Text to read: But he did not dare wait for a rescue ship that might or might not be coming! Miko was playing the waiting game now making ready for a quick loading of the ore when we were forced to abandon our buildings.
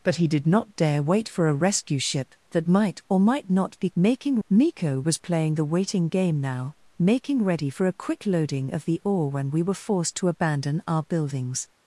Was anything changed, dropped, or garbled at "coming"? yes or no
yes